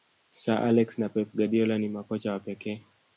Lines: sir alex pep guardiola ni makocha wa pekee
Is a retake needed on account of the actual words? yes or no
yes